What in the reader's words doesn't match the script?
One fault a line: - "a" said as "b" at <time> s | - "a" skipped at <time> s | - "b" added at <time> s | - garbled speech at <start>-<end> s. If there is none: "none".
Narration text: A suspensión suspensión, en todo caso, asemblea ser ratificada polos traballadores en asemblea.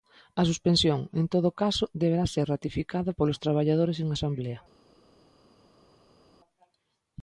- "suspensión" skipped at 1.0 s
- "asemblea" said as "deberá" at 2.0 s